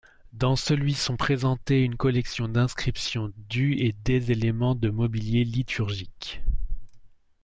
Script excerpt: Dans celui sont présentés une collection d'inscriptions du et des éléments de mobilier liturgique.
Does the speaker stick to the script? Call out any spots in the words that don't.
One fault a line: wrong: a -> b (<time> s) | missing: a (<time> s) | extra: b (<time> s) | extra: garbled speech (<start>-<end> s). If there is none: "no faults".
no faults